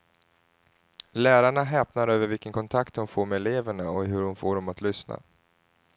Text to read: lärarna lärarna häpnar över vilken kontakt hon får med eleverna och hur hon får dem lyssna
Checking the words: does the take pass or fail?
fail